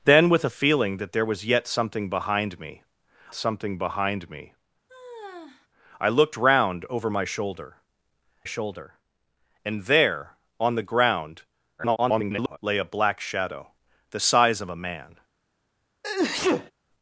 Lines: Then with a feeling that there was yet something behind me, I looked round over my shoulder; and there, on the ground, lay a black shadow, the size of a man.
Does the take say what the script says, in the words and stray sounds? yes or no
no